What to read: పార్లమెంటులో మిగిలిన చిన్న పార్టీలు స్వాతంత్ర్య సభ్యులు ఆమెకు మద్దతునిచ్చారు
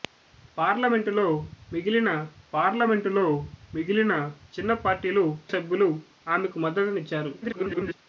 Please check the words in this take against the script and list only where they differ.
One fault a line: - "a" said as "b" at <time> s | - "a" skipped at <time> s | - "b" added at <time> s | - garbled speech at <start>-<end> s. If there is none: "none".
- "పార్లమెంటులో మిగిలిన" added at 2.5 s
- "స్వాతంత్ర్య" skipped at 5.3 s
- garbled speech at 7.4-8.0 s